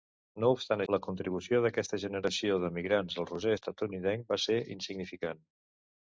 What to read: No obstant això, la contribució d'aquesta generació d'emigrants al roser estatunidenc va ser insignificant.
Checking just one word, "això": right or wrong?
wrong